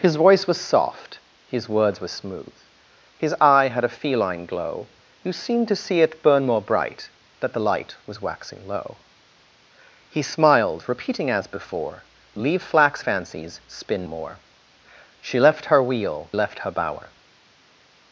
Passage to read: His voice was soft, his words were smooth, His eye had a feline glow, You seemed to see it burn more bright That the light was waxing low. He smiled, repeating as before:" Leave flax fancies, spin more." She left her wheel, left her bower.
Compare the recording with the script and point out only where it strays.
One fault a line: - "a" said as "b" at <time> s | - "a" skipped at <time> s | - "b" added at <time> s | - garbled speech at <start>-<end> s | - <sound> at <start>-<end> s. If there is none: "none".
none